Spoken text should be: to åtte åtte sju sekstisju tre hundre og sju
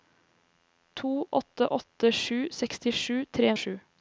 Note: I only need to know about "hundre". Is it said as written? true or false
false